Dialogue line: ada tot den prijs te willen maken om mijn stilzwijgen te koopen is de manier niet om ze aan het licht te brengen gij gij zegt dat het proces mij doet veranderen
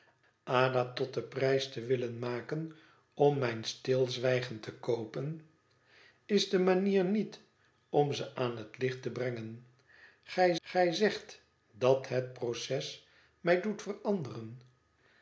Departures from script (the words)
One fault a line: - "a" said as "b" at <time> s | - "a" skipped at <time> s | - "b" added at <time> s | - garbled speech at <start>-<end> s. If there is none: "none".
none